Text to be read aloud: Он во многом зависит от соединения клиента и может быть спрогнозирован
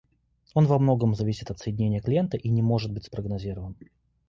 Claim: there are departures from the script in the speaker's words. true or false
true